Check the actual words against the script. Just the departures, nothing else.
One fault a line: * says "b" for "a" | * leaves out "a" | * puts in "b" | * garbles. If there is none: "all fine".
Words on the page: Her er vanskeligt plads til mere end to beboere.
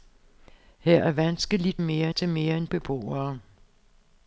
* says "mere" for "plads"
* leaves out "to"